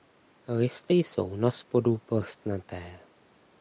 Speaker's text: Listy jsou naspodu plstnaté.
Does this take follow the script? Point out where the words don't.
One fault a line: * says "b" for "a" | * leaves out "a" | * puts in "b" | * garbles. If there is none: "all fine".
all fine